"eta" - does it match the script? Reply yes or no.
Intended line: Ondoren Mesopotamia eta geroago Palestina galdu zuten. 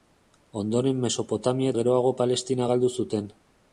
no